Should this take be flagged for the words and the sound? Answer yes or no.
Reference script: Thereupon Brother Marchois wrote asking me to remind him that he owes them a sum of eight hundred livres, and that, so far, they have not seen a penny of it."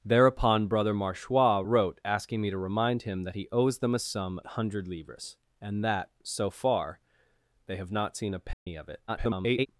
yes